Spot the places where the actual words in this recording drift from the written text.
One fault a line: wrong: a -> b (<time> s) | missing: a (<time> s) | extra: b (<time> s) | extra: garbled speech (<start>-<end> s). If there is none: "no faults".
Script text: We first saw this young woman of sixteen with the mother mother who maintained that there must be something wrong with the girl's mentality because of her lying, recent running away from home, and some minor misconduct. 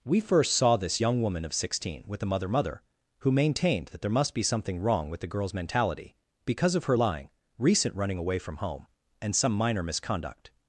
no faults